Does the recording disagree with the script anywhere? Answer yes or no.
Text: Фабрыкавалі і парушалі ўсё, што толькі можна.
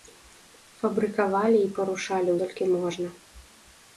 yes